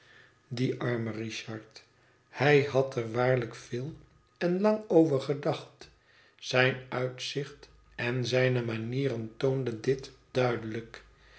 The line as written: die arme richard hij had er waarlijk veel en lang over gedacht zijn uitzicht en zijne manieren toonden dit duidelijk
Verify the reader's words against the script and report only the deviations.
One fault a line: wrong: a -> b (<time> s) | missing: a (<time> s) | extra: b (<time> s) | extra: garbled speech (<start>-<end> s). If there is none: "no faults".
no faults